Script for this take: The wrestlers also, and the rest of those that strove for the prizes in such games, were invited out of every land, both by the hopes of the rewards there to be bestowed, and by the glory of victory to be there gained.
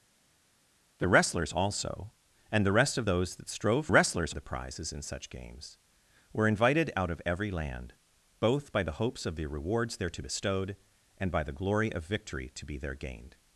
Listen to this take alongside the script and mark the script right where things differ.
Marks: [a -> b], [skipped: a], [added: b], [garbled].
The wrestlers also, and the rest of those that strove [for -> wrestlers] the prizes in such games, were invited out of every land, both by the hopes of the rewards there to [skipped: be] bestowed, and by the glory of victory to be there gained.